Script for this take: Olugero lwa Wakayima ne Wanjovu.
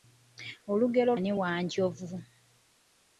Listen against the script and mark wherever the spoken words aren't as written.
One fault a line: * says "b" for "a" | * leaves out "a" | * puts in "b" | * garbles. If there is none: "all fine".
* leaves out "lwa Wakayima"